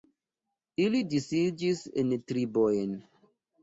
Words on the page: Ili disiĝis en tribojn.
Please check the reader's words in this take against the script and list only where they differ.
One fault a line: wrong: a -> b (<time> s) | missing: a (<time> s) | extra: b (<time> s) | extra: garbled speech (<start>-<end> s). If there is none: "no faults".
no faults